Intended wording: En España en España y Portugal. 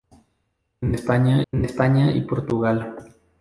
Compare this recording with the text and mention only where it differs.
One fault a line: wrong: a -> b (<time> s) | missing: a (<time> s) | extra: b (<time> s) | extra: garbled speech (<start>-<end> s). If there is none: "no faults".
no faults